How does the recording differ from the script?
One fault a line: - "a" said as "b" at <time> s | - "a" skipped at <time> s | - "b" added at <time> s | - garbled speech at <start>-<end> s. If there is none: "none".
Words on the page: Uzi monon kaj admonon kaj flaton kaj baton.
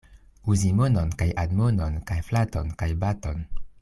none